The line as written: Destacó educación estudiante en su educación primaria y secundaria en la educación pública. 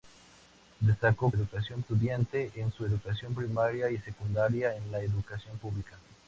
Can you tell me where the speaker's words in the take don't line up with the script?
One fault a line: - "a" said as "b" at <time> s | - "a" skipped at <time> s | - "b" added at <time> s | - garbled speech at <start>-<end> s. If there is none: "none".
none